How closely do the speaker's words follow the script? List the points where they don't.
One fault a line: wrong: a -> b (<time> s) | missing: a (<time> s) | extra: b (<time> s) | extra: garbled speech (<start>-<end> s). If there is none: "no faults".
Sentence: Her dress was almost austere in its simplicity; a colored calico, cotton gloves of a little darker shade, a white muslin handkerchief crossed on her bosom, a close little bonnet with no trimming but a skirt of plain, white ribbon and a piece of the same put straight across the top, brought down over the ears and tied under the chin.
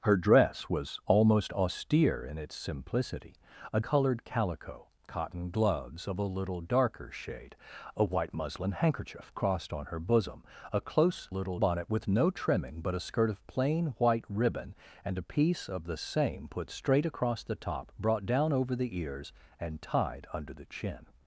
no faults